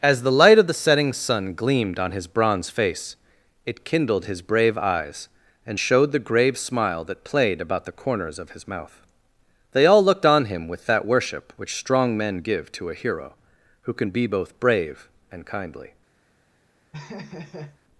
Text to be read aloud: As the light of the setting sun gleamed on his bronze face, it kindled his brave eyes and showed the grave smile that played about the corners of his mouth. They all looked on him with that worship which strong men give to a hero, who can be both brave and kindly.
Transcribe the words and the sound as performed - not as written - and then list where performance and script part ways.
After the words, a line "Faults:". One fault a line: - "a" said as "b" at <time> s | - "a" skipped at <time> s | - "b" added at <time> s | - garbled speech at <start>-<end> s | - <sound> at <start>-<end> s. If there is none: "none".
As the light of the setting sun gleamed on his bronze face, it kindled his brave eyes and showed the grave smile that played about the corners of his mouth. They all looked on him with that worship which strong men give to a hero, who can be both brave and kindly.
Faults:
- laugh at 16.9-17.8 s